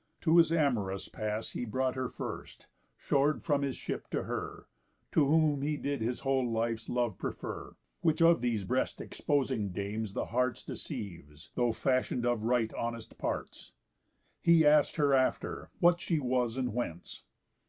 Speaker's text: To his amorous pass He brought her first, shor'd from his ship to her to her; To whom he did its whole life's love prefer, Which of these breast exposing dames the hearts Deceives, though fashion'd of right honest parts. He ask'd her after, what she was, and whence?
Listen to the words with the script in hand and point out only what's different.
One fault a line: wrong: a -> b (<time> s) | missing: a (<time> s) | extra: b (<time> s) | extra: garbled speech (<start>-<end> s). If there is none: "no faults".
missing: her To (5.3 s)
wrong: its -> his (6.0 s)